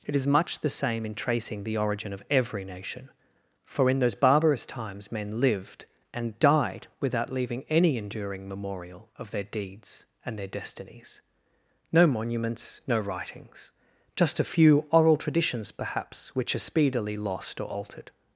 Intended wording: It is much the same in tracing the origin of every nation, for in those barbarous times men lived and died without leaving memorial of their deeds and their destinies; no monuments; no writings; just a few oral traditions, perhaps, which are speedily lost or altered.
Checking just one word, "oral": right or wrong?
right